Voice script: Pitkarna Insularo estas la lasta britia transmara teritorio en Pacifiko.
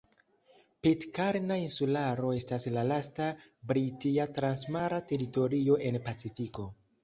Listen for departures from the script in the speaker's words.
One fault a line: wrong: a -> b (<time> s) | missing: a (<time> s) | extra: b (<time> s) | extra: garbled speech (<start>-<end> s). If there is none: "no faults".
no faults